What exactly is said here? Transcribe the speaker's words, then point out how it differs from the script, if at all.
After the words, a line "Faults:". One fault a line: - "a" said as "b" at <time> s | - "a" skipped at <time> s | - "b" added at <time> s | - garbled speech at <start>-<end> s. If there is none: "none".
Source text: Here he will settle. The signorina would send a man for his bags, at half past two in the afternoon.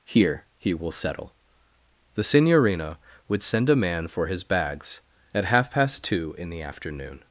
Here he will settle. The signorina would send a man for his bags, at half past two in the afternoon.
Faults:
none